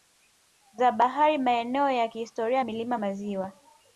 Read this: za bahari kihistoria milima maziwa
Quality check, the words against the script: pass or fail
fail